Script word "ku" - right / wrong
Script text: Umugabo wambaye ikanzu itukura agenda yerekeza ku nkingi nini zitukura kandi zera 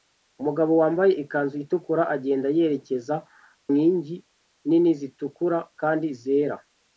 wrong